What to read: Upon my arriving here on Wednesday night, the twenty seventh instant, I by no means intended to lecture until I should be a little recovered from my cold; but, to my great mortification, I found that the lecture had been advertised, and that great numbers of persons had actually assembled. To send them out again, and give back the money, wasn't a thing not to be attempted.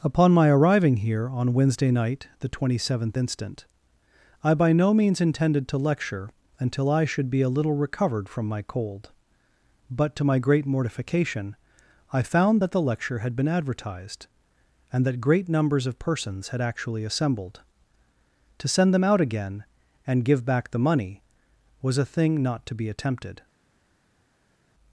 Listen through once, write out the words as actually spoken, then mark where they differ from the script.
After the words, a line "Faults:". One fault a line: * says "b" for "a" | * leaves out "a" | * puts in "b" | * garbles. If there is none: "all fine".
Upon my arriving here on Wednesday night, the twenty seventh instant, I by no means intended to lecture until I should be a little recovered from my cold; but, to my great mortification, I found that the lecture had been advertised, and that great numbers of persons had actually assembled. To send them out again, and give back the money, was a thing not to be attempted.
Faults:
* says "was" for "wasn't"